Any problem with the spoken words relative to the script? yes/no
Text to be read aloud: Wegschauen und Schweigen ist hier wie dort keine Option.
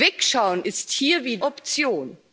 yes